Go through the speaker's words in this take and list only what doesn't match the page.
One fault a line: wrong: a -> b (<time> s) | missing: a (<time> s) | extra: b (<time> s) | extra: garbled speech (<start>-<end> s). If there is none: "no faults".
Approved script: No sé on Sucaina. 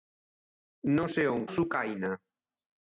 no faults